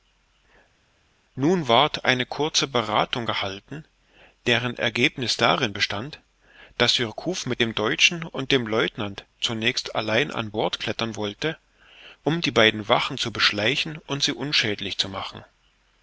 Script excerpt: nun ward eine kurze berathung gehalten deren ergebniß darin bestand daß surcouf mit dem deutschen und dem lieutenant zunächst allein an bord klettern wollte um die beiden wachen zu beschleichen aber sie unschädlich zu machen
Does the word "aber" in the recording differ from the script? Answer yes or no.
yes